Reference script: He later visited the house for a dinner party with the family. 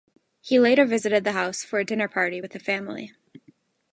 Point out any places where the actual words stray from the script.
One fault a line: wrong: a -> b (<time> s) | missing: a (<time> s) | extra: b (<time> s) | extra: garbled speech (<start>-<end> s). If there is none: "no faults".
no faults